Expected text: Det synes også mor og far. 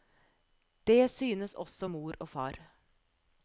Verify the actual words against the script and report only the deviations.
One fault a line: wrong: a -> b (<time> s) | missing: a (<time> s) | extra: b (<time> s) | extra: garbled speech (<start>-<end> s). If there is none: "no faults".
no faults